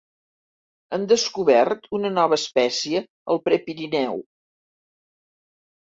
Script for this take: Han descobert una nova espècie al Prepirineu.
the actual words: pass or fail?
pass